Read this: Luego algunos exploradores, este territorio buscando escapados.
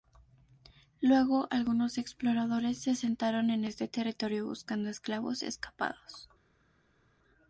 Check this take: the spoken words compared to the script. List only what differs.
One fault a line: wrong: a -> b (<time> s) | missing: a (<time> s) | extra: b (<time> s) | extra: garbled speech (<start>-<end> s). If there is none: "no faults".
extra: se asentaron en (2.8 s)
extra: esclavos (4.9 s)